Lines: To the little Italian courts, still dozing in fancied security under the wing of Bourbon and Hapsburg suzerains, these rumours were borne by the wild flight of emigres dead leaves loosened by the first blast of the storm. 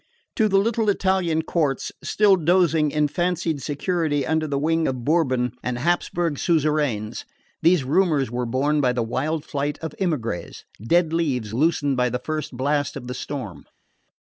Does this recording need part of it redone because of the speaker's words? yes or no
no